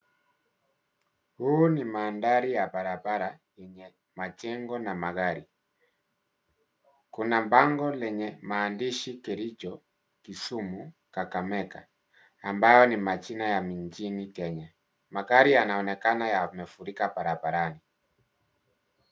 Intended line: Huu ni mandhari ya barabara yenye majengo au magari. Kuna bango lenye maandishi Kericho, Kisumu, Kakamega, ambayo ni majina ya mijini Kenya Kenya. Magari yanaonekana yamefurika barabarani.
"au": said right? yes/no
no